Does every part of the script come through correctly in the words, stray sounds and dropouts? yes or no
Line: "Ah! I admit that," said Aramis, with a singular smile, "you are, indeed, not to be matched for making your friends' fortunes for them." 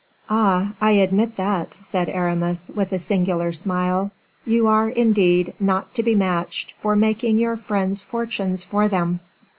yes